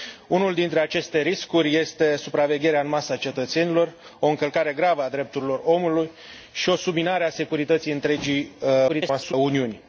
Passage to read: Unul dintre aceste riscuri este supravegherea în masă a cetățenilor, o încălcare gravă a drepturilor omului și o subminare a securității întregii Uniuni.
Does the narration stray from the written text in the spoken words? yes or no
yes